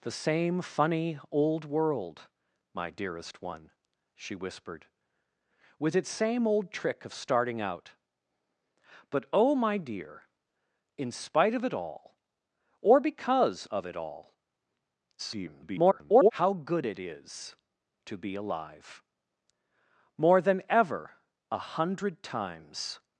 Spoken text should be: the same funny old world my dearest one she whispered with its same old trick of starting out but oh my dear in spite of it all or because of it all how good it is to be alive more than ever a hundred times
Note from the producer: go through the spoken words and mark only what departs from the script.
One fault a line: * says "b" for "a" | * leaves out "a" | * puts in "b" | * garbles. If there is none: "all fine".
* garbles